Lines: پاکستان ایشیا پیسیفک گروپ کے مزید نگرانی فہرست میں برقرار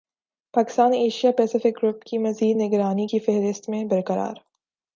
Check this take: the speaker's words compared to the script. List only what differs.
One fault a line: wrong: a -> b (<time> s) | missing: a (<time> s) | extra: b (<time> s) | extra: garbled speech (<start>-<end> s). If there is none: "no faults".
wrong: کے -> کی (2.0 s)
extra: کی (3.0 s)